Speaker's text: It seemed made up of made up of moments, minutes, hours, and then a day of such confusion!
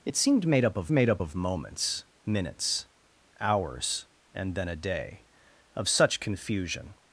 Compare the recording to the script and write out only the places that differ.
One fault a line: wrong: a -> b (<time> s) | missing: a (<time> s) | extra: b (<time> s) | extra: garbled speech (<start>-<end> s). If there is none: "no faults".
no faults